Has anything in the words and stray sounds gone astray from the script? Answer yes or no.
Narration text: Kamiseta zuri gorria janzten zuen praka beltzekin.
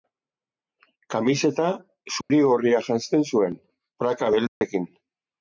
yes